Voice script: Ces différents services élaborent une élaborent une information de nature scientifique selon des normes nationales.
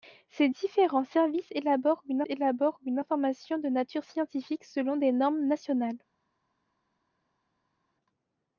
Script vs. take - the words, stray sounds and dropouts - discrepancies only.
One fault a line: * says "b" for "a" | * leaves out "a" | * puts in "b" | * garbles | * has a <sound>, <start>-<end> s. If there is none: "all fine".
all fine